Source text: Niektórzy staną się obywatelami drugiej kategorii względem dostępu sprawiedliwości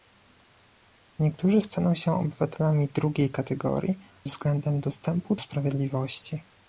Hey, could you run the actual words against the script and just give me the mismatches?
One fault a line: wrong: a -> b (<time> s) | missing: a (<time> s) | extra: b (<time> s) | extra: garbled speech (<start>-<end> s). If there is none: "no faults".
no faults